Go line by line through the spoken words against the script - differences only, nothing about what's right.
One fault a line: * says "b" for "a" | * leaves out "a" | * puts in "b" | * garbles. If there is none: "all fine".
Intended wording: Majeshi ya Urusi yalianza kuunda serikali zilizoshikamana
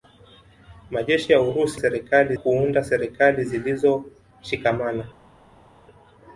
* says "serikali" for "yalianza"